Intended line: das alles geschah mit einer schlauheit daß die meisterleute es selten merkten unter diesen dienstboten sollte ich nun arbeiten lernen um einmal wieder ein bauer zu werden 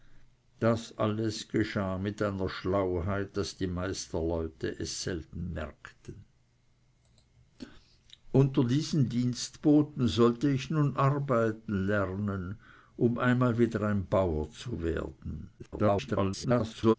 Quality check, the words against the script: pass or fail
fail